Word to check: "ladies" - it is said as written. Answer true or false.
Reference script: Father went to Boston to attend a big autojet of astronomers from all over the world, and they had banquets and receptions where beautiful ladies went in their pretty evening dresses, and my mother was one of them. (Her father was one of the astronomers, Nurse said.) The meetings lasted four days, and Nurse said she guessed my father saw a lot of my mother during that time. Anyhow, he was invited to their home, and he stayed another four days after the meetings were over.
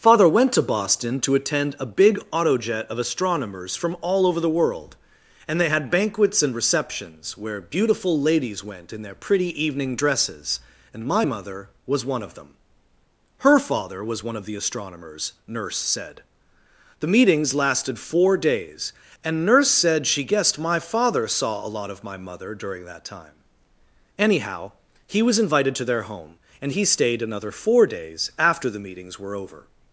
true